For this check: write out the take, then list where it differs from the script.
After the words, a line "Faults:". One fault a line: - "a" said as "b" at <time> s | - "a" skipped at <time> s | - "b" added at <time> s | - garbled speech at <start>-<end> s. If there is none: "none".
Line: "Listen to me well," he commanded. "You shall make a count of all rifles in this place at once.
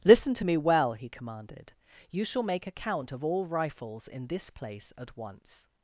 "Listen to me well," he commanded. "You shall make a count of all rifles in this place at once.
Faults:
none